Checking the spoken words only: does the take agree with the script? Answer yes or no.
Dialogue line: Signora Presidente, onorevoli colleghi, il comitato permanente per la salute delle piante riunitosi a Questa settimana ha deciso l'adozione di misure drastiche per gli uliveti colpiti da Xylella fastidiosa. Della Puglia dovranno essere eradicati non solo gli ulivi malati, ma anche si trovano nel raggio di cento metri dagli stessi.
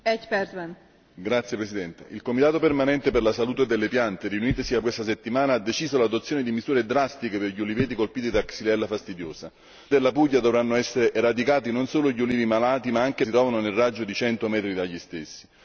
yes